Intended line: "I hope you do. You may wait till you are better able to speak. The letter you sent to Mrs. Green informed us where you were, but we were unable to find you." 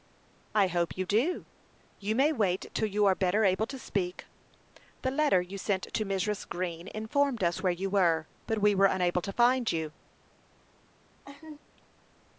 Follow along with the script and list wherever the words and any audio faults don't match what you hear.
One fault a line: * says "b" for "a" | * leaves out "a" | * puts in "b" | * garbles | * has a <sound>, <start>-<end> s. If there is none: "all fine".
* has a laugh, 11.2-11.6 s